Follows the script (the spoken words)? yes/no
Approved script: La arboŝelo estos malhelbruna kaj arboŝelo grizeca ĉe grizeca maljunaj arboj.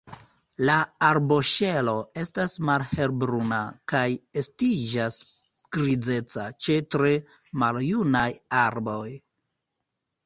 no